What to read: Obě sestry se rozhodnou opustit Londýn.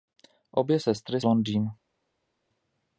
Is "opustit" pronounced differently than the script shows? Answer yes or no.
yes